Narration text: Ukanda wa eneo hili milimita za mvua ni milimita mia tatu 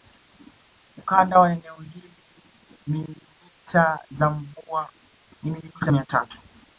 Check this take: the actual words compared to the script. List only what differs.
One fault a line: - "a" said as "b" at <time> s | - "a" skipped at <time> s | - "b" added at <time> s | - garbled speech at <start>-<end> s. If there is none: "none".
none